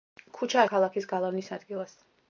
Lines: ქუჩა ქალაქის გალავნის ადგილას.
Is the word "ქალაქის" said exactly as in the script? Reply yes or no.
yes